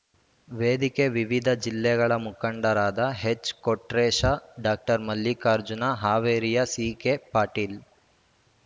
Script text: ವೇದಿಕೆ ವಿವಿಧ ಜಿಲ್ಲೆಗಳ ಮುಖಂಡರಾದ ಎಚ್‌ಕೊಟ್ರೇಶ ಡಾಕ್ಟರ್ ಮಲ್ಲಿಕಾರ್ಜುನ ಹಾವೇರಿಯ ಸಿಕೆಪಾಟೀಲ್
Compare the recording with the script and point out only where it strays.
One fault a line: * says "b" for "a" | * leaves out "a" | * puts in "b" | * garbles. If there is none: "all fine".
all fine